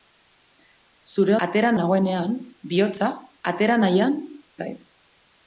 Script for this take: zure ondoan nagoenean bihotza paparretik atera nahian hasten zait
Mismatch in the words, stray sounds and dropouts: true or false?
true